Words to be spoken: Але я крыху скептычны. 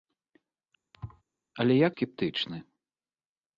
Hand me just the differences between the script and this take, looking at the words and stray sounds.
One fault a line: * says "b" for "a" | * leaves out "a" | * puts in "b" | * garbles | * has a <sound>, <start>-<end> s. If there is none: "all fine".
* has a thud, 0.9-1.2 s
* leaves out "крыху"